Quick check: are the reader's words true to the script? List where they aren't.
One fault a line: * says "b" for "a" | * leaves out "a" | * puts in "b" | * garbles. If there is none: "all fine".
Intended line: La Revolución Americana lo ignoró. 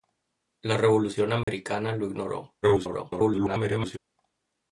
* garbles